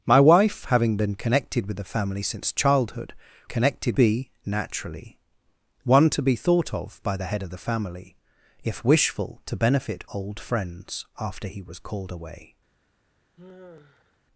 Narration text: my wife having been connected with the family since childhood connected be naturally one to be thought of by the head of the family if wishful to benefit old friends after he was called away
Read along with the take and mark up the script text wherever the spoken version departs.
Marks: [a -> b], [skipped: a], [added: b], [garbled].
my wife having been connected with the family since childhood connected be naturally one to be thought of by the head of the family if wishful to benefit old friends after he was called away